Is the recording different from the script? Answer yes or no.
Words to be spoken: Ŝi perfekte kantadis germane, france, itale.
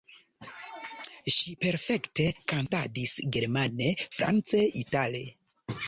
no